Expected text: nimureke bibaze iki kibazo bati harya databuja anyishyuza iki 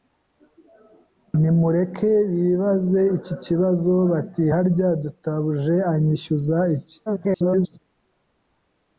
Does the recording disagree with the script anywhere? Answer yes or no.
yes